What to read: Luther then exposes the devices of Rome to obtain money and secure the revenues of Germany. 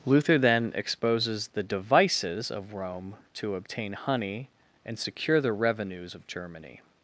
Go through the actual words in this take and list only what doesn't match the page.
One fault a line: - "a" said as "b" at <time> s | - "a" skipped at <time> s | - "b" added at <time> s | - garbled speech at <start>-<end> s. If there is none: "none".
- "money" said as "honey" at 3.9 s